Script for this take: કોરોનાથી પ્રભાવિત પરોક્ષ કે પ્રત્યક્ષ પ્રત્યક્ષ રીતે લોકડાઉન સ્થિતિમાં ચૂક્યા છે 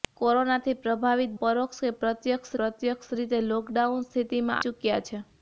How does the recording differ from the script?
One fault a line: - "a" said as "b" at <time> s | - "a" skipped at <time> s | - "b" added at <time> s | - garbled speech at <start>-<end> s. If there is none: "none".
none